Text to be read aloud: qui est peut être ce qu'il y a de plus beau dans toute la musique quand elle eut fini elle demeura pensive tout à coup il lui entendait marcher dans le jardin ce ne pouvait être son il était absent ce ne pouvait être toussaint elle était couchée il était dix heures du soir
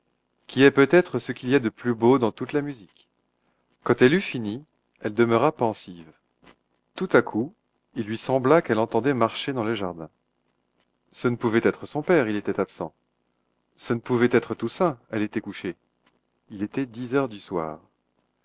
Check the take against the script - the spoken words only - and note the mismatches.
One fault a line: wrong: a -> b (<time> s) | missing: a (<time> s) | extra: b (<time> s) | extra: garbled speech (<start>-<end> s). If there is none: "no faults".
extra: sembla qu'elle (8.2 s)
extra: père (12.0 s)